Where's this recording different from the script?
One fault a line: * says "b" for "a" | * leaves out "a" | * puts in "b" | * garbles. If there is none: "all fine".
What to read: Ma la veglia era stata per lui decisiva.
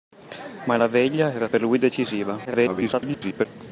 * leaves out "stata"
* garbles